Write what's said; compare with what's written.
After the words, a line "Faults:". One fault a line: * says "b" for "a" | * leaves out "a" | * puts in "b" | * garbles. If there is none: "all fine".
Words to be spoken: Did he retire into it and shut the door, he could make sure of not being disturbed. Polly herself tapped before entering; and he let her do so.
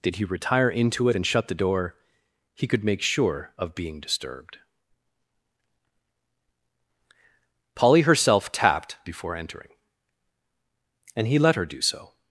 Did he retire into it and shut the door, he could make sure of being disturbed. Polly herself tapped before entering; and he let her do so.
Faults:
* leaves out "not"